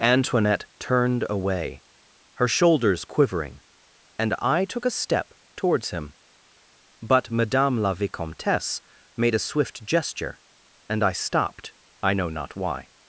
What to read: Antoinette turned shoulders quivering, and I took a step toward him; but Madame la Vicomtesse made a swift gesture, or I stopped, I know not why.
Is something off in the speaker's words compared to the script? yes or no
yes